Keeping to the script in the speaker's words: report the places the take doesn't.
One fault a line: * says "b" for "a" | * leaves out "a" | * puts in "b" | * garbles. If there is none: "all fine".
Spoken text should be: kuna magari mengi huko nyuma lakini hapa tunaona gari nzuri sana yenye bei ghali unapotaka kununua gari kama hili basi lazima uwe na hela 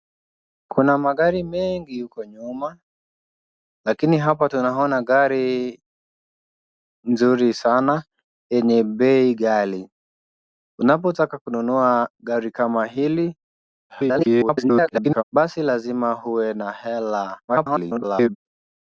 * garbles
* garbles